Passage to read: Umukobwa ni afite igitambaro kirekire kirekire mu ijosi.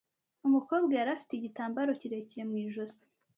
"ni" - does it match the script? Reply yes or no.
no